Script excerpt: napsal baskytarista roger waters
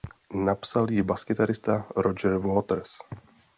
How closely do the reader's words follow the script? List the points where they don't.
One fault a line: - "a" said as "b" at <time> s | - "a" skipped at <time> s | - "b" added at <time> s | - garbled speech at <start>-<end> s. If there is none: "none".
- "ji" added at 0.9 s